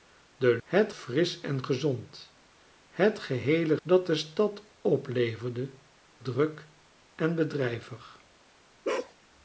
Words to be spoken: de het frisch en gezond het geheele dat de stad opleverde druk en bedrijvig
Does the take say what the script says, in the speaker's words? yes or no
yes